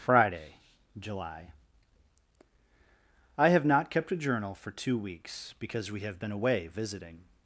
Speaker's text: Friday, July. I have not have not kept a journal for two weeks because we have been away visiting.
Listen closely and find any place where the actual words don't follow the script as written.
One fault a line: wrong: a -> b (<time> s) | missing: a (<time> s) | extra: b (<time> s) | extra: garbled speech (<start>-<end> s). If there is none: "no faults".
missing: have not (3.9 s)